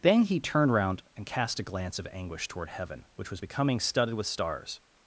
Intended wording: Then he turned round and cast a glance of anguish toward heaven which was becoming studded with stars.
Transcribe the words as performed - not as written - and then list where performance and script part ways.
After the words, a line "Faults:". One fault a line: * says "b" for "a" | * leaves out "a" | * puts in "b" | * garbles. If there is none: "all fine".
Then he turned round and cast a glance of anguish toward heaven which was becoming studded with stars.
Faults:
all fine